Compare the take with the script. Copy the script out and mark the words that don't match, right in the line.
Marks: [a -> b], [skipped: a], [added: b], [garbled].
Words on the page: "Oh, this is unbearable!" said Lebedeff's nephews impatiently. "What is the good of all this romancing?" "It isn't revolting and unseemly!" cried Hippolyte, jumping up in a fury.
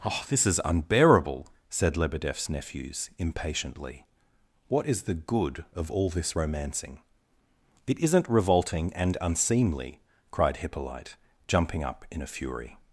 "Oh, this is unbearable!" said Lebedeff's nephews impatiently. "What is the good of all this romancing?" "It isn't revolting and unseemly!" cried Hippolyte, jumping up in a fury.